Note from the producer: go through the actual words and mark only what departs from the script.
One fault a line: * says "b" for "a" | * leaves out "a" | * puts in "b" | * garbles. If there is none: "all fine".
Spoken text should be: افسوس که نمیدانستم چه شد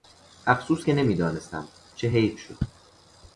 * puts in "حیف"